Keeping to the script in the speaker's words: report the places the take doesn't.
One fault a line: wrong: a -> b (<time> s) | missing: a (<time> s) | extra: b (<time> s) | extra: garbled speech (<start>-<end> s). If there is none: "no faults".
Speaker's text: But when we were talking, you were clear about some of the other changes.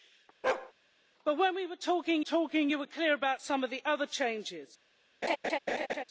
extra: talking (2.2 s)